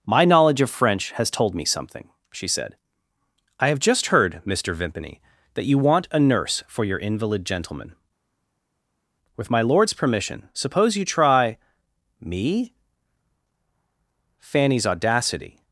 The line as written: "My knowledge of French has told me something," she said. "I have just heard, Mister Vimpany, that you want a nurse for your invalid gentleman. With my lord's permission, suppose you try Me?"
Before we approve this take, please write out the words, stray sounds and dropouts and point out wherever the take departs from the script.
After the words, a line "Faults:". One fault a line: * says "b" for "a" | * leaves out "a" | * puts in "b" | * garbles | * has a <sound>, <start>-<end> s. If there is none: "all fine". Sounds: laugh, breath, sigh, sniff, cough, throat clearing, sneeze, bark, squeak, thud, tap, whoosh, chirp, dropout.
"My knowledge of French has told me something," she said. "I have just heard, Mister Vimpany, that you want a nurse for your invalid gentleman. With my lord's permission, suppose you try Me?" Fanny's audacity
Faults:
* puts in "Fanny's audacity"